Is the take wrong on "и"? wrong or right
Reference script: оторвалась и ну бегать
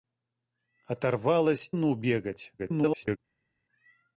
wrong